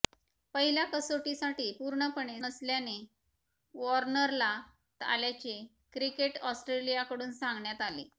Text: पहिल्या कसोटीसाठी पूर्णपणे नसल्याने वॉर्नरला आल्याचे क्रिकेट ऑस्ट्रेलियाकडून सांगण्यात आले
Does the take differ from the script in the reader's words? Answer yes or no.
no